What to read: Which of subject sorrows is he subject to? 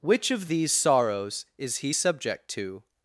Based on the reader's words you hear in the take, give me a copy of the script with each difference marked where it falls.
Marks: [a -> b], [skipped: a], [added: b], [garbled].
Which of [subject -> these] sorrows is he subject to?